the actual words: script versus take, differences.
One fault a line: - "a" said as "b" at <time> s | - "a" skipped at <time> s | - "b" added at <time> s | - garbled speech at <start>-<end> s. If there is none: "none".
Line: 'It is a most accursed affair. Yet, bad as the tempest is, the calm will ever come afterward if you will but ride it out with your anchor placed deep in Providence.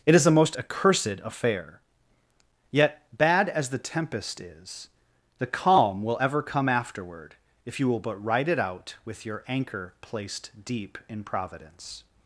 none